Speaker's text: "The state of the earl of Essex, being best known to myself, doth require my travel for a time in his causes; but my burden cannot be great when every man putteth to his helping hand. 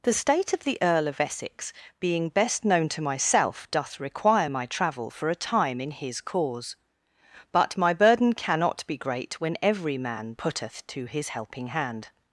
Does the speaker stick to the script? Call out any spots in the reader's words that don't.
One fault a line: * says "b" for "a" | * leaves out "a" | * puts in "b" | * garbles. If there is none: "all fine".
* says "cause" for "causes"